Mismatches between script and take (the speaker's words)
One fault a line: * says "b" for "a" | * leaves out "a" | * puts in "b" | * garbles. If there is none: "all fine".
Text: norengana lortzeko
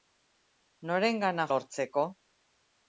all fine